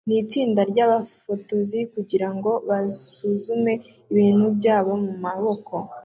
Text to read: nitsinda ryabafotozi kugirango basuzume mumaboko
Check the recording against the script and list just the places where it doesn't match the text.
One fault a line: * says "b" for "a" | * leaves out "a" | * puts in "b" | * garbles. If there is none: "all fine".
* puts in "ibintu byabo"